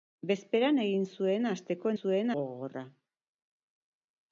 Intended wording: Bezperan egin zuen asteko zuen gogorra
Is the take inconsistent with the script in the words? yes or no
no